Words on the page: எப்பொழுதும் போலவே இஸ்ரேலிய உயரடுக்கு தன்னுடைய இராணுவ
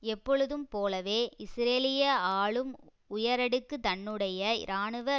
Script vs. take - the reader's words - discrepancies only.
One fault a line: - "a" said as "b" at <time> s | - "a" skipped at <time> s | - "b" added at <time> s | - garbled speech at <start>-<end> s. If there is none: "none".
- "ஆளும்" added at 2.4 s